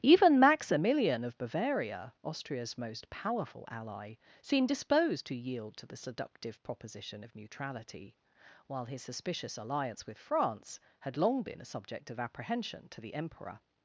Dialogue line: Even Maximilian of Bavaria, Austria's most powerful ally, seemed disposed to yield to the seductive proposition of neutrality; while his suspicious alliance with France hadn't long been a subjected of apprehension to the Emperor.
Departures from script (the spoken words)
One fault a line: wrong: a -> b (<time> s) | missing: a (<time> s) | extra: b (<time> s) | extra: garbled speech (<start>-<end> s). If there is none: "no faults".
wrong: hadn't -> had (11.0 s)
wrong: subjected -> subject (11.7 s)